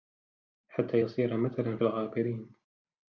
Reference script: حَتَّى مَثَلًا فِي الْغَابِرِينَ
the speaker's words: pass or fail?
fail